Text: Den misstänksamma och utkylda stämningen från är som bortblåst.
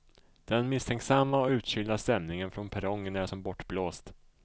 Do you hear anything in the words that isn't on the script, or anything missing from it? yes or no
yes